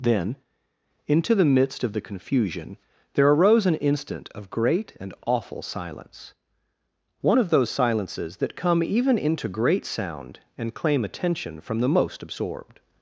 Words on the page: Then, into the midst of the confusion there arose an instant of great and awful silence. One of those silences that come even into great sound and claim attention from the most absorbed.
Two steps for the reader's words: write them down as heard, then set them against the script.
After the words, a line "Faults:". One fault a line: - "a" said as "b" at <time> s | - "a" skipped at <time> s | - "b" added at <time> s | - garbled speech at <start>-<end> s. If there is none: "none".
Then, into the midst of the confusion there arose an instant of great and awful silence. One of those silences that come even into great sound and claim attention from the most absorbed.
Faults:
none